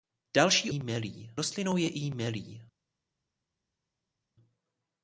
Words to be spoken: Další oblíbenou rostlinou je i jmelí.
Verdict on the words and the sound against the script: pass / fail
fail